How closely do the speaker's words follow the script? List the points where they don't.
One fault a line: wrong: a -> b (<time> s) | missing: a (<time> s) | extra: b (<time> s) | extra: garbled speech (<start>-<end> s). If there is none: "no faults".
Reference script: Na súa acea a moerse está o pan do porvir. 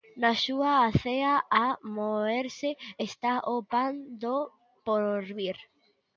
no faults